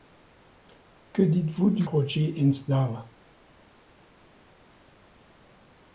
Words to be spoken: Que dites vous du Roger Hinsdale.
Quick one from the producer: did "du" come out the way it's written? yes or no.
yes